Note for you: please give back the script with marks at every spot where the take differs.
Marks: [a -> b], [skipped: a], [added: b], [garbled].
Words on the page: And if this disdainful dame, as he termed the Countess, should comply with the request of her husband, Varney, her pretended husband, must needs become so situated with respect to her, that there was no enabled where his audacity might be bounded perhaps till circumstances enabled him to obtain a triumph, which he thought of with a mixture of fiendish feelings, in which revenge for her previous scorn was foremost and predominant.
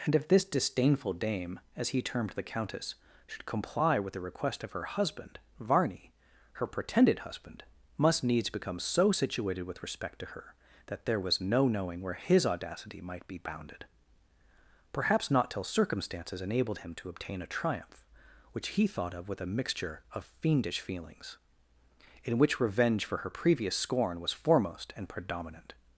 And if this disdainful dame, as he termed the Countess, should comply with the request of her husband, Varney, her pretended husband, must needs become so situated with respect to her, that there was no [enabled -> knowing] where his audacity might be bounded perhaps [added: not] till circumstances enabled him to obtain a triumph, which he thought of with a mixture of fiendish feelings, in which revenge for her previous scorn was foremost and predominant.